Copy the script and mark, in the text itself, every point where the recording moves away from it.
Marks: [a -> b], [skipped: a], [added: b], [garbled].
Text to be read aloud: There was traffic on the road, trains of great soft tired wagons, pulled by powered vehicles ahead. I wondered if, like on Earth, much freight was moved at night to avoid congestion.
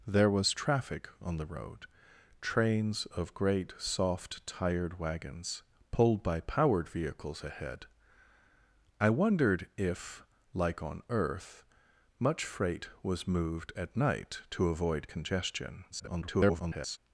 There was traffic on the road, trains of great soft tired wagons, pulled by powered vehicles ahead. I wondered if, like on Earth, much freight was moved at night to avoid congestion. [garbled]